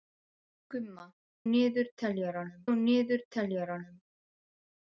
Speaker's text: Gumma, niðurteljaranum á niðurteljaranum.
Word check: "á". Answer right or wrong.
right